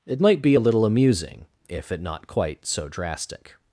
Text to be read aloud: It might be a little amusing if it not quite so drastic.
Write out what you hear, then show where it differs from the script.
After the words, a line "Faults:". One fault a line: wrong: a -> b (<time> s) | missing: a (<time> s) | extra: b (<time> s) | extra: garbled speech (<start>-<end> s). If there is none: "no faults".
It might be a little amusing if it not quite so drastic.
Faults:
no faults